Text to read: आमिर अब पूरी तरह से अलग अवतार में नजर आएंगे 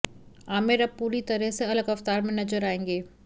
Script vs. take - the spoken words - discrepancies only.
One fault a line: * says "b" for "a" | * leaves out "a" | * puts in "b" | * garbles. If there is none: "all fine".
all fine